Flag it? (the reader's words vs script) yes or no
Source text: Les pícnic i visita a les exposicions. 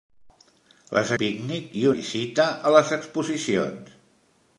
no